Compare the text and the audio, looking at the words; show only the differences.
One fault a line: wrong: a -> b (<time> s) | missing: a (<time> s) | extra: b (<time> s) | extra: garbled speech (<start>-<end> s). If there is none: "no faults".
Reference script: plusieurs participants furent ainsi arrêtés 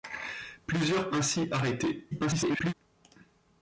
missing: participants furent (1.1 s)
extra: garbled speech (2.1-2.7 s)